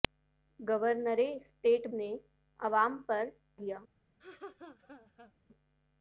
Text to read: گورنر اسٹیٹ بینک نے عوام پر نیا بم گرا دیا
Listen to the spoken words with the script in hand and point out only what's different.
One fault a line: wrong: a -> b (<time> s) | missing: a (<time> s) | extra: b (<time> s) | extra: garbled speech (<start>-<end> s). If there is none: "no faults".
missing: بینک (1.8 s)
missing: نیا بم گرا (3.2 s)